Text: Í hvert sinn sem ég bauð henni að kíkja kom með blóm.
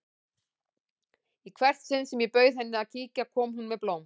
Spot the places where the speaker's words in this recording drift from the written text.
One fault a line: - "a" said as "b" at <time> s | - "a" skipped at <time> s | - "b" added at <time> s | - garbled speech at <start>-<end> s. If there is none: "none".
- "hún" added at 3.6 s